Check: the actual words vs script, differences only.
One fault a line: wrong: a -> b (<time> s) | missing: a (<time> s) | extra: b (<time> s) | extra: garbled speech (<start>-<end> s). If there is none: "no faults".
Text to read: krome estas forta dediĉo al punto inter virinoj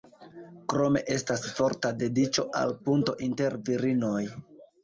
no faults